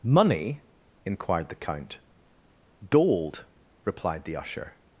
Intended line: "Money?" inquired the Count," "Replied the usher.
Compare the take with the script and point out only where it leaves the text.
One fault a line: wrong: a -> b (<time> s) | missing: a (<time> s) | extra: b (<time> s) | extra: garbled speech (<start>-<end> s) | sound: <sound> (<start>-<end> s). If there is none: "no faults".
extra: Gold (2.9 s)